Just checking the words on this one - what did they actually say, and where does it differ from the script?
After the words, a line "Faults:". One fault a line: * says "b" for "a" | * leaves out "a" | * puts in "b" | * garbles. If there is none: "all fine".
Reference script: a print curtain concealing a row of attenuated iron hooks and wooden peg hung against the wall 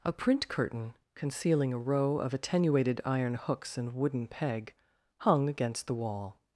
a print curtain concealing a row of attenuated iron hooks and wooden peg hung against the wall
Faults:
all fine